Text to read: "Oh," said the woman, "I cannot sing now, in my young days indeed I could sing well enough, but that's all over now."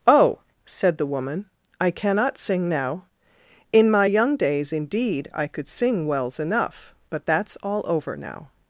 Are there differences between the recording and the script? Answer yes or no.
yes